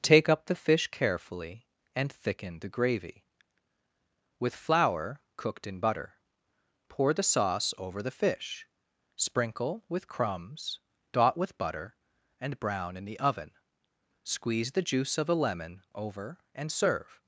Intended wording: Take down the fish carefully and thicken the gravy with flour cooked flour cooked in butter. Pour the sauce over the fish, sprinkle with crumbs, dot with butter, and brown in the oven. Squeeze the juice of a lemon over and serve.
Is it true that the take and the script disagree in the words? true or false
true